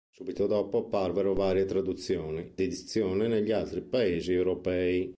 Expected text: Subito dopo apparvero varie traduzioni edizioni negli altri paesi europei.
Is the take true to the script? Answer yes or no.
yes